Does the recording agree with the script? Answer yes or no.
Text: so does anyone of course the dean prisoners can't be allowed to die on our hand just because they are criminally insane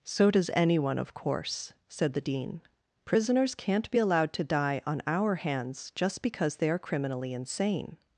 no